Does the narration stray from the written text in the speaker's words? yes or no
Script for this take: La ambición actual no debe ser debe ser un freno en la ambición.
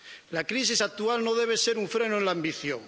yes